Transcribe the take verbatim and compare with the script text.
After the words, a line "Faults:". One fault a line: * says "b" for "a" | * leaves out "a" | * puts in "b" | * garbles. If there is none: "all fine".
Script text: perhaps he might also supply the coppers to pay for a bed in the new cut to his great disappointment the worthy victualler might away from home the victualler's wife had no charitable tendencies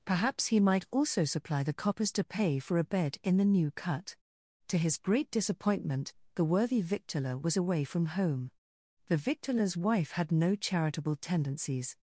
perhaps he might also supply the coppers to pay for a bed in the new cut to his great disappointment the worthy victualler was away from home the victualler's wife had no charitable tendencies
Faults:
* says "was" for "might"